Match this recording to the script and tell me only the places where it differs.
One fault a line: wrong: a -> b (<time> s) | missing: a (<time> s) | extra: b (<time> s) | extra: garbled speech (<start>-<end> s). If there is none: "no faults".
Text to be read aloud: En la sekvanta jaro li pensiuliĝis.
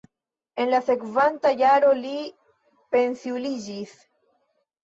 no faults